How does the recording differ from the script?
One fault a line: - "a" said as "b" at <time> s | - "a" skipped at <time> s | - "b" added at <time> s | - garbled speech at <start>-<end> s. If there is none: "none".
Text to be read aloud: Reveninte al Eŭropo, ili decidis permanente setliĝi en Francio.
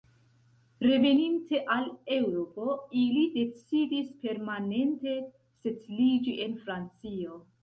none